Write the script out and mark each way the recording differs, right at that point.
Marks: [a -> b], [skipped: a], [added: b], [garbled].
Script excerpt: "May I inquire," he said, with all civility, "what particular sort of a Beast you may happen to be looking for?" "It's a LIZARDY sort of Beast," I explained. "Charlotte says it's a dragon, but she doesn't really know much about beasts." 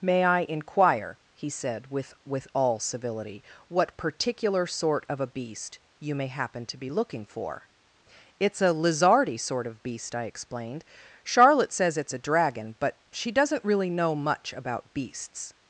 "May I inquire," he said, with [added: with] all civility, "what particular sort of a Beast you may happen to be looking for?" "It's a LIZARDY sort of Beast," I explained. "Charlotte says it's a dragon, but she doesn't really know much about beasts."